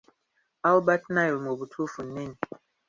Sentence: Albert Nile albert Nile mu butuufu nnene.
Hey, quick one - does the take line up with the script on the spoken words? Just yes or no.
no